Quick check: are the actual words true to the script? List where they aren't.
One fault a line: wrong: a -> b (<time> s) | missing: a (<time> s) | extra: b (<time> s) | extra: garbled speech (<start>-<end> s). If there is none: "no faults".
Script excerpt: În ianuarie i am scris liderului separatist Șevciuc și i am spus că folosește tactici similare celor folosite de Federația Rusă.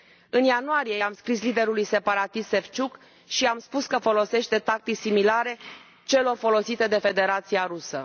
no faults